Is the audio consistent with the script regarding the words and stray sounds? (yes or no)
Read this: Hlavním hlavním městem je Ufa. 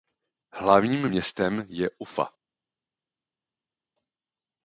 no